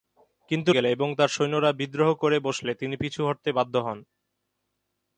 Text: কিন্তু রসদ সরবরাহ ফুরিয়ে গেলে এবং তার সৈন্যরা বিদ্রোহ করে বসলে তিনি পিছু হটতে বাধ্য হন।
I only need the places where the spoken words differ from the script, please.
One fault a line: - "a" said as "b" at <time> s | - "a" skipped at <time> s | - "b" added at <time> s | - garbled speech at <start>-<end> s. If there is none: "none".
- "রসদ সরবরাহ ফুরিয়ে" skipped at 0.7 s